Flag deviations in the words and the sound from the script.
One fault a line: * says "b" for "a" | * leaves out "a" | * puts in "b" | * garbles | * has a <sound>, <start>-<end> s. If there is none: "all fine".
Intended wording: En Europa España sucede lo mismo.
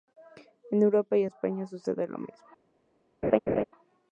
* puts in "y"
* has a laugh, 3.2-3.6 s